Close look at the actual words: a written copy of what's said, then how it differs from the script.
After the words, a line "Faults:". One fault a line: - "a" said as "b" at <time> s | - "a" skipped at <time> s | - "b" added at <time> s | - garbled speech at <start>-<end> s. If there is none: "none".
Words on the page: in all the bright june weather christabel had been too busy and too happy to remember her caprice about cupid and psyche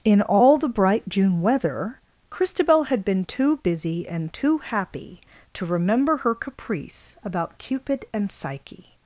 in all the bright june weather christabel had been too busy and too happy to remember her caprice about cupid and psyche
Faults:
none